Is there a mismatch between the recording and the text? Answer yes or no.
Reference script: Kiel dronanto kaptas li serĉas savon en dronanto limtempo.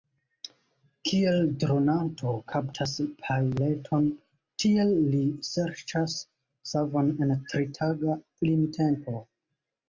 yes